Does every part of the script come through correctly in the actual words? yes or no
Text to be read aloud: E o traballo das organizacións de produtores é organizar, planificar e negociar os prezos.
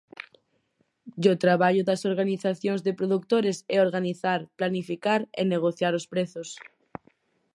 yes